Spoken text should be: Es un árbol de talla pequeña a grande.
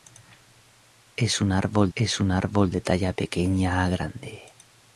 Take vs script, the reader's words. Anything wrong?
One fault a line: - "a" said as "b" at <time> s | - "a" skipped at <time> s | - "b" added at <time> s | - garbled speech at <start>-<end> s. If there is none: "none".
- "es un árbol" added at 1.9 s